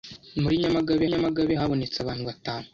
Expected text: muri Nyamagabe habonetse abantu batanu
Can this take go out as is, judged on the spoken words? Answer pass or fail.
fail